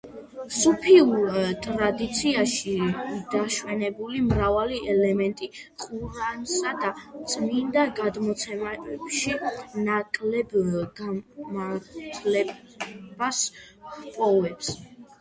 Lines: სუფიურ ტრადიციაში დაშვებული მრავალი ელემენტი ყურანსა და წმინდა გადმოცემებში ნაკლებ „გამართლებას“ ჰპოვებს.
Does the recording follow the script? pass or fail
pass